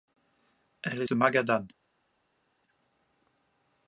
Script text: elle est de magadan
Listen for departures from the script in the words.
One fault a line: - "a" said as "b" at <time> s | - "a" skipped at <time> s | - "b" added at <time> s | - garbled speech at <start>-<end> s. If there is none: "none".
none